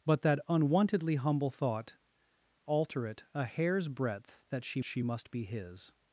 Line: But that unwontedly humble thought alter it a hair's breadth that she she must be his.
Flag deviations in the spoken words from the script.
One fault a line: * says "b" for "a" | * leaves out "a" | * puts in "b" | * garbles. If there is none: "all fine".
all fine